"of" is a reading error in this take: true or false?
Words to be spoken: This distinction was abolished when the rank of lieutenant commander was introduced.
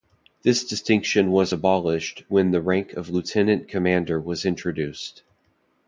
false